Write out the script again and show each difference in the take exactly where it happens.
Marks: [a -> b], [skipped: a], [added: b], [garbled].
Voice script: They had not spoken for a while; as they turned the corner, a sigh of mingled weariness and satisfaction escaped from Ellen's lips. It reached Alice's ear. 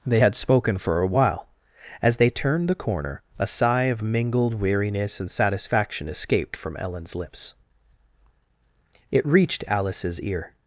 They had [skipped: not] spoken for a while; as they turned the corner, a sigh of mingled weariness and satisfaction escaped from Ellen's lips. It reached Alice's ear.